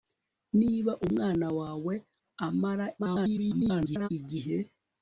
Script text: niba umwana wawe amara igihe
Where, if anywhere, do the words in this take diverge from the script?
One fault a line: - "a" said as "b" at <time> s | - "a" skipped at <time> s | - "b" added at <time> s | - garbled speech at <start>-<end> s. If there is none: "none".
- garbled speech at 3.0-4.1 s